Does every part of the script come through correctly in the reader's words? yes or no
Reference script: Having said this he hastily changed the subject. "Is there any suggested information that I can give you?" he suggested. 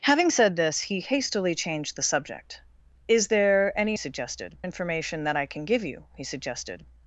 yes